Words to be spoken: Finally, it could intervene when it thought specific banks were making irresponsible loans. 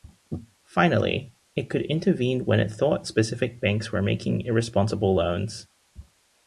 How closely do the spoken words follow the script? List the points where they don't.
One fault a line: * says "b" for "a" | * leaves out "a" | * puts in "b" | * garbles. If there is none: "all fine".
all fine